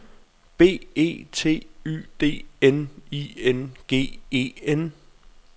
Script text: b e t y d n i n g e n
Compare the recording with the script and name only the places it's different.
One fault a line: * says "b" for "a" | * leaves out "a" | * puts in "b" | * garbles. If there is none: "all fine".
all fine